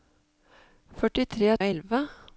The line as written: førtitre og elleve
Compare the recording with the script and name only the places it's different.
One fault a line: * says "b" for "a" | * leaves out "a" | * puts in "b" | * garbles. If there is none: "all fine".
all fine